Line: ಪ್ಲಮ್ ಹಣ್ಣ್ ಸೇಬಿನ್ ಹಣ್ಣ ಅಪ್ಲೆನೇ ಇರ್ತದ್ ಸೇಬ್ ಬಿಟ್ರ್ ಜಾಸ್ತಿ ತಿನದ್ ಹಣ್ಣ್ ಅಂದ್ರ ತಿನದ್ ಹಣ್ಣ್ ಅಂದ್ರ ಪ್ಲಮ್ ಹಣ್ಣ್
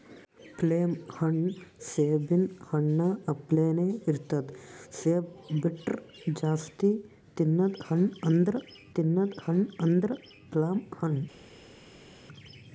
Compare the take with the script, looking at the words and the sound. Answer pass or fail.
pass